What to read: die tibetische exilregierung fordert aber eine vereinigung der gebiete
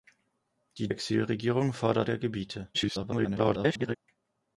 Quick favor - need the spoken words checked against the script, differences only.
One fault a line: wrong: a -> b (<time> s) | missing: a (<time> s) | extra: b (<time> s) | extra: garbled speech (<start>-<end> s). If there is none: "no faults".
missing: tibetische (0.9 s)
missing: aber eine vereinigung (2.1 s)
extra: garbled speech (2.7-4.0 s)